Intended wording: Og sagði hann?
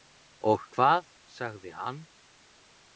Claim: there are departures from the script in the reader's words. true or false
true